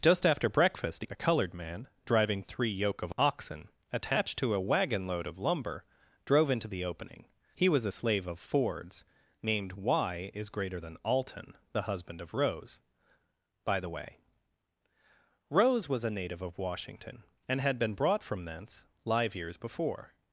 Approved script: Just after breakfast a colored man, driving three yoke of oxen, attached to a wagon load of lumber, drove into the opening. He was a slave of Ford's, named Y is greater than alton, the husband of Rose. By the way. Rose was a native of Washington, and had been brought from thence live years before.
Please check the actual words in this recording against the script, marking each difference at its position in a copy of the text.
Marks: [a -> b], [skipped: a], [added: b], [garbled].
Just after breakfast a colored man, driving three yoke of oxen, attached to a wagon load of lumber, drove into the opening. He was a slave of Ford's, named Y is greater than alton, the husband of Rose. By the way. Rose was a native of Washington, and had been brought from thence live years before.